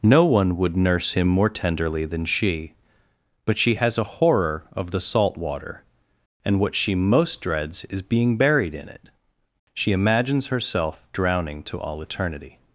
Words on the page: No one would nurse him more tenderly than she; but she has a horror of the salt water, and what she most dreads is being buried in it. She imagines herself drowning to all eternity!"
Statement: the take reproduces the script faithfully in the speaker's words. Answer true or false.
true